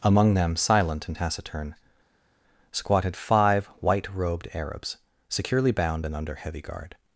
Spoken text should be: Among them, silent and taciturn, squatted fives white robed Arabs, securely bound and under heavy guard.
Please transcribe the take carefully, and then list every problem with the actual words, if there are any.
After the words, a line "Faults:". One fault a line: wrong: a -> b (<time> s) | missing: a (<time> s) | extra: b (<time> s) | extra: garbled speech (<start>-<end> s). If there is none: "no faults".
Among them, silent and taciturn, squatted five white robed Arabs, securely bound and under heavy guard.
Faults:
wrong: fives -> five (3.2 s)